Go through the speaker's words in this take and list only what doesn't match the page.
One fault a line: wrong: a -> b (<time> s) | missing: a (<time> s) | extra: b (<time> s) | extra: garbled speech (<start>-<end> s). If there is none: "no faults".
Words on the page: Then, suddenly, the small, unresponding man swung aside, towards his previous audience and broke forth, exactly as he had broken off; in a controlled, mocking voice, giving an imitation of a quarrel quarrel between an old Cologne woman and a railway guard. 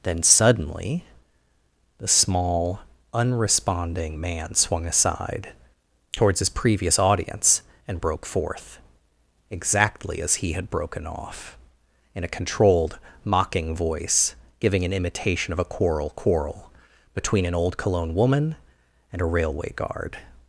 no faults